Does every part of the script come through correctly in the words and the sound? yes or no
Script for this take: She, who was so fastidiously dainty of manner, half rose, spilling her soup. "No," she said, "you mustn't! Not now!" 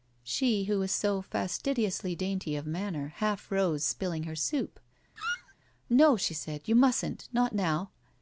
no